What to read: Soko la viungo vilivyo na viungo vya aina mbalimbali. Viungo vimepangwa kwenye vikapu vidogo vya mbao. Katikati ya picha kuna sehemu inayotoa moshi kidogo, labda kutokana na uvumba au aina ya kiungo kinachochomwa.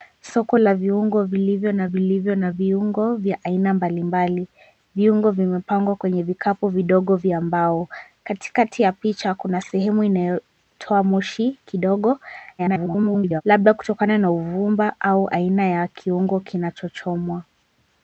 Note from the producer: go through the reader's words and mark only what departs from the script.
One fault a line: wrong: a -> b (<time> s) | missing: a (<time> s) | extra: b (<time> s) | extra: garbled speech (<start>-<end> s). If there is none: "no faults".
extra: vilivyo na (1.9 s)
extra: garbled speech (12.6-13.4 s)